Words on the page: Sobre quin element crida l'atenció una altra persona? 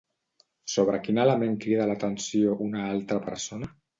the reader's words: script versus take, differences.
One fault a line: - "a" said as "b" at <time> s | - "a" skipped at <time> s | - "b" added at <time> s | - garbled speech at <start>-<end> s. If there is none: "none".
none